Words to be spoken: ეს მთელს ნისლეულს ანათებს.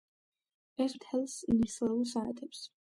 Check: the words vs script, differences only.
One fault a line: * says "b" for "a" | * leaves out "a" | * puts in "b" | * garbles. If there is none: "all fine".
all fine